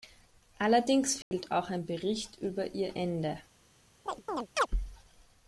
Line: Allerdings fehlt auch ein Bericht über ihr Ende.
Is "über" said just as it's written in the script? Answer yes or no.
yes